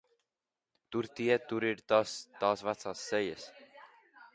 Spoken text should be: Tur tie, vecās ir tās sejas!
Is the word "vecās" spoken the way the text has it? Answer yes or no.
no